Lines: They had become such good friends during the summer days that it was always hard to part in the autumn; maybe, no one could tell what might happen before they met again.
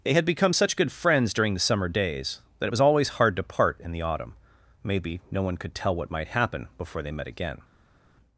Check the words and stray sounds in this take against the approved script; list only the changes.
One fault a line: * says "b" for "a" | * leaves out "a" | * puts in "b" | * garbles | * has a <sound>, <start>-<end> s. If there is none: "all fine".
all fine